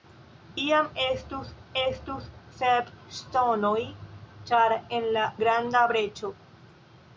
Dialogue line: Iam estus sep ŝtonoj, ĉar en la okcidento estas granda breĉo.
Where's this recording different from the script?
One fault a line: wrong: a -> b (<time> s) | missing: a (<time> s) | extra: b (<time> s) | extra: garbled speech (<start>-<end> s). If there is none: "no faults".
extra: estus (1.8 s)
missing: okcidento estas (5.2 s)